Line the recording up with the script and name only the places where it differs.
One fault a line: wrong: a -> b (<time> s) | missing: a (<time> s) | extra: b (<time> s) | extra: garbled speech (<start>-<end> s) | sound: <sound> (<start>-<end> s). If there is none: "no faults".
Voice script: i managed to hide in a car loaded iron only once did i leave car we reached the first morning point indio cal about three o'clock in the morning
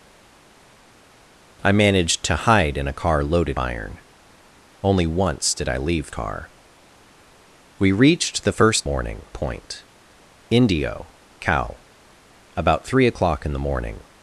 no faults